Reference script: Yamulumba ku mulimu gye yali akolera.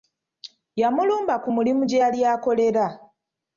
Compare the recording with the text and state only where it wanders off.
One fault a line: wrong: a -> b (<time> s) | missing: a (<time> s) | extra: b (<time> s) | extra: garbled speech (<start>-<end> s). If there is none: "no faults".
no faults